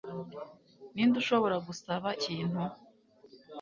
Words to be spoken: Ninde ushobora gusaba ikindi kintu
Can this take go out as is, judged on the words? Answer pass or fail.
fail